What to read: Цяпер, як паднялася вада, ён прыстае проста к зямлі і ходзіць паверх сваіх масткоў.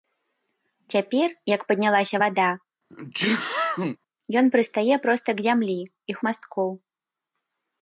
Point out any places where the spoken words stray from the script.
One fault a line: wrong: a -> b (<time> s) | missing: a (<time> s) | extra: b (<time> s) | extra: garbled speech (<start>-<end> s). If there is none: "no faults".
missing: ходзіць паверх сваіх (6.2 s)